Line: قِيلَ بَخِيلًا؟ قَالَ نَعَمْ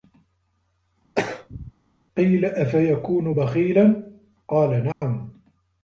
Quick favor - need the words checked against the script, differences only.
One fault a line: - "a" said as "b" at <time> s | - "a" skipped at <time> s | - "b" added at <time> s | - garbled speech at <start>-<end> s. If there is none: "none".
- "أَفَيَكُونُ" added at 2.4 s